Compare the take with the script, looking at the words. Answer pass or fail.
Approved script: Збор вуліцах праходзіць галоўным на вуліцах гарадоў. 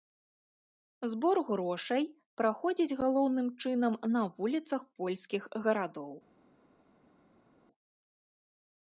fail